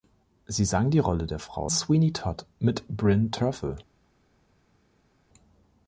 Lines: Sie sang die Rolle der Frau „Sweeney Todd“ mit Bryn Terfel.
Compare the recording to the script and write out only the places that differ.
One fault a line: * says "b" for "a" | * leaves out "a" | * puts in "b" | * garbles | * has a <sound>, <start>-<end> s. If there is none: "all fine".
all fine